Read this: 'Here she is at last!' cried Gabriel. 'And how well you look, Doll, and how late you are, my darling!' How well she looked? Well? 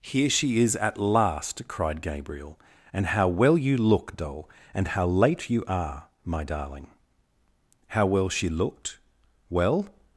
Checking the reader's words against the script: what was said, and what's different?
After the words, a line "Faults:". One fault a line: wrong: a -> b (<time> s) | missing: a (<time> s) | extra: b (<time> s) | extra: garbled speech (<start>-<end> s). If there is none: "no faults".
'Here she is at last!' cried Gabriel. 'And how well you look, Doll, and how late you are, my darling!' How well she looked? Well?
Faults:
no faults